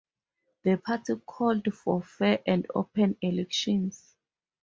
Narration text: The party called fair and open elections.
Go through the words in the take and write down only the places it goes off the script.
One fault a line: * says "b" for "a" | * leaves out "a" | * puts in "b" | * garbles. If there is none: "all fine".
* puts in "for"